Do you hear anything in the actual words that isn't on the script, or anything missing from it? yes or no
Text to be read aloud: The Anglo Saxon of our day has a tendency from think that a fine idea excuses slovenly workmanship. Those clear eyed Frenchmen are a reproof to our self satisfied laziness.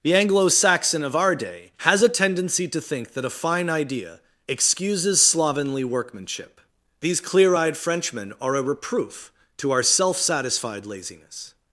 yes